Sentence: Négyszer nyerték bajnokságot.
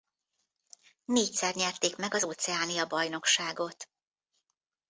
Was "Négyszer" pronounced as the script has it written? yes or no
yes